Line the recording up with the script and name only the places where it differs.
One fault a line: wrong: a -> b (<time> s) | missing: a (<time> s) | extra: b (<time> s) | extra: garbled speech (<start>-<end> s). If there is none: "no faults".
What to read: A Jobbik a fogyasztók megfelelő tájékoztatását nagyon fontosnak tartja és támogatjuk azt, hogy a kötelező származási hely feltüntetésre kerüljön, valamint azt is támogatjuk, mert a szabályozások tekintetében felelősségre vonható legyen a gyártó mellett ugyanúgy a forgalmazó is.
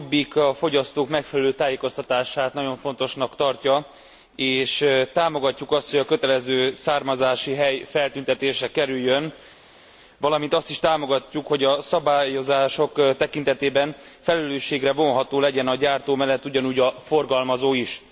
wrong: mert -> hogy (11.5 s)